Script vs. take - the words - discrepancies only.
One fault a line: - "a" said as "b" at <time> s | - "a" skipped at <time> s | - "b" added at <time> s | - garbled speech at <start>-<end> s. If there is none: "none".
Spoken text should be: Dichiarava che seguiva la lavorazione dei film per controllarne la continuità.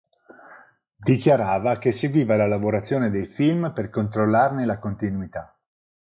none